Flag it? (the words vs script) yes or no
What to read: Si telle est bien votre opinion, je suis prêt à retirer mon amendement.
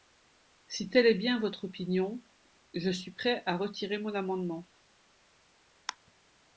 no